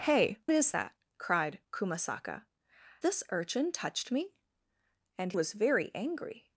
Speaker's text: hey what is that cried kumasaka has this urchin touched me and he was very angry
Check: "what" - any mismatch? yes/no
yes